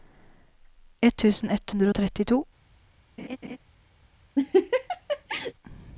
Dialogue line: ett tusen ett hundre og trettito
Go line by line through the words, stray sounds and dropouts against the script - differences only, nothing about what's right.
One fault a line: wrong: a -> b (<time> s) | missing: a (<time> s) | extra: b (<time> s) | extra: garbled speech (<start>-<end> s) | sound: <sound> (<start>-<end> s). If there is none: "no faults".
sound: laugh (3.2-3.6 s)
sound: laugh (4.4-5.5 s)